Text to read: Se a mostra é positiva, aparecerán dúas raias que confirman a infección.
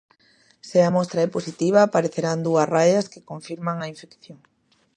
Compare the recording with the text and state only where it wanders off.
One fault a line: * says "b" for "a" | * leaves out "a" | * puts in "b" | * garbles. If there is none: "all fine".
all fine